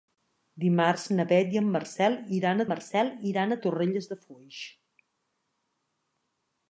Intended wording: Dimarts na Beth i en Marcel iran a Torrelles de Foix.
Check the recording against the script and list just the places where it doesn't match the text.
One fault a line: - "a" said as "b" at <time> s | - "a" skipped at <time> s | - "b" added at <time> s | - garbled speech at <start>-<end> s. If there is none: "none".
- "Marcel iran" added at 2.7 s